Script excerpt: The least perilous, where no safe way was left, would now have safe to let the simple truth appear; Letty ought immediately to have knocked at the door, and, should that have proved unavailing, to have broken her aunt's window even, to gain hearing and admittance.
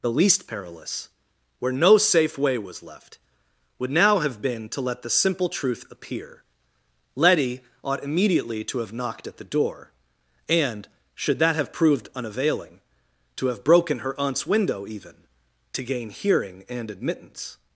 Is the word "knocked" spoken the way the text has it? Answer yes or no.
yes